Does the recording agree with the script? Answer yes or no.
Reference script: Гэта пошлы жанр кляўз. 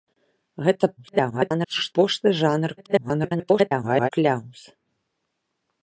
no